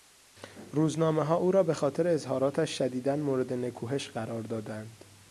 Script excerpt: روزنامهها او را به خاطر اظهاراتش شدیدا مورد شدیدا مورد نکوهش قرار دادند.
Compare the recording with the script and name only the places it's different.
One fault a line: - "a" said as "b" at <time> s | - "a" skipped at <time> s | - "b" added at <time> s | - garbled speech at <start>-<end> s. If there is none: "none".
- "شدیدا مورد" skipped at 3.5 s